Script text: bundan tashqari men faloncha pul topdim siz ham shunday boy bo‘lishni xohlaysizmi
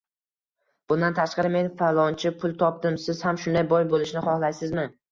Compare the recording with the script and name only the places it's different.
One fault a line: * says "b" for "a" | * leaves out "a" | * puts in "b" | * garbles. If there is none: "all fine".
all fine